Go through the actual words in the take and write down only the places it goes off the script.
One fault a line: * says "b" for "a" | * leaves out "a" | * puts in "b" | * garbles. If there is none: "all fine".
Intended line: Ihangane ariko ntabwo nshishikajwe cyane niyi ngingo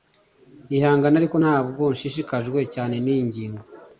all fine